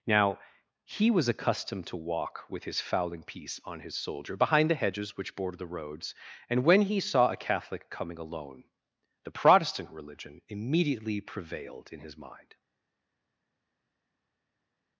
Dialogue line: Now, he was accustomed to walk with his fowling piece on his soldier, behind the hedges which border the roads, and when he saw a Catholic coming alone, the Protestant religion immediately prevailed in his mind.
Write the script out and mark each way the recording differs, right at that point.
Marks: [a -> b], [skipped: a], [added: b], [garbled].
Now, he was accustomed to walk with his fowling piece on his soldier, behind the hedges which border the roads, and when he saw a Catholic coming alone, the Protestant religion immediately prevailed in his mind.